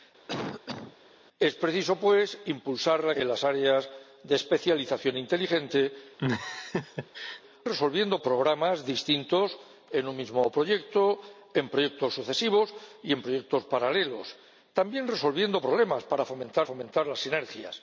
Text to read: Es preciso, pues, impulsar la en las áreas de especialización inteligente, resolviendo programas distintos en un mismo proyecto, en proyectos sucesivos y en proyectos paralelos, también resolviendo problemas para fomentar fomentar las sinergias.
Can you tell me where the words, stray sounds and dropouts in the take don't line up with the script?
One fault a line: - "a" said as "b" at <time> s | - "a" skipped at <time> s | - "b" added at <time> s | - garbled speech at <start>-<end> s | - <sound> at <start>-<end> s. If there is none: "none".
- cough at 0.3-1.0 s
- laugh at 6.2-7.4 s